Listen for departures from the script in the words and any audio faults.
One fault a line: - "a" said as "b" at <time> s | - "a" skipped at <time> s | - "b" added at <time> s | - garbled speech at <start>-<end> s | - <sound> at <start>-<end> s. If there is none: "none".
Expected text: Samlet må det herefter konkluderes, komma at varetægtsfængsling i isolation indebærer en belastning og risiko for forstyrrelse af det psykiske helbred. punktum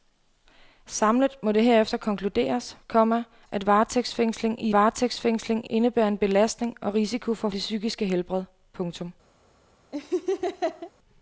- "isolation" said as "varetægtsfængsling" at 4.7 s
- "forstyrrelse af" skipped at 7.5 s
- laugh at 9.9-10.9 s